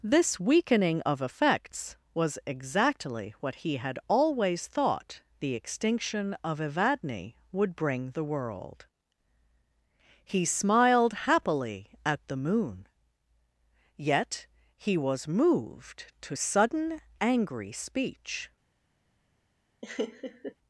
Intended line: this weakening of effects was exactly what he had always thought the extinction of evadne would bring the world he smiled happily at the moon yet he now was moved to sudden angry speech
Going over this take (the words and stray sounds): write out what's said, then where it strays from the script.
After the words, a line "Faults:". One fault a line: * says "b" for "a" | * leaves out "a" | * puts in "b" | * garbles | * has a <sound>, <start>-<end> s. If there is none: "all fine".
this weakening of effects was exactly what he had always thought the extinction of evadne would bring the world he smiled happily at the moon yet he was moved to sudden angry speech
Faults:
* leaves out "now"
* has a laugh, 19.8-20.5 s